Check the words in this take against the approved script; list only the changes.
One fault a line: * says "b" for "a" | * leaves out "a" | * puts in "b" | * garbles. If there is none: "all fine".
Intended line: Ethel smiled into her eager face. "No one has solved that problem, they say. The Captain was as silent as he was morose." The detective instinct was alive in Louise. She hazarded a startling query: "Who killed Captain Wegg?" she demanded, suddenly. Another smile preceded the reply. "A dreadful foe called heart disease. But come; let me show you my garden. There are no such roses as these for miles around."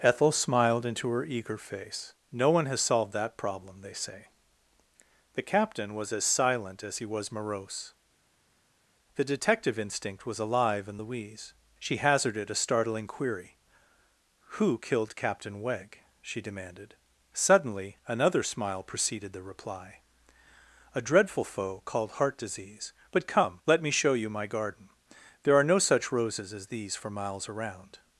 all fine